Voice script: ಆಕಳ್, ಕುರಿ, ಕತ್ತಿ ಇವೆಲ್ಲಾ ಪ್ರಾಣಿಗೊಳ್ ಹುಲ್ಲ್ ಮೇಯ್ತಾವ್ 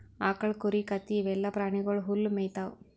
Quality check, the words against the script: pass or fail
pass